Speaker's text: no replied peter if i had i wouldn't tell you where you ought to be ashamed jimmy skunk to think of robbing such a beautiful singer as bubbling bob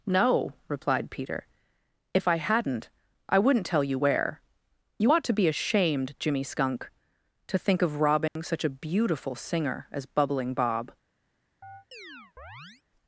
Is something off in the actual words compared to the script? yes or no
yes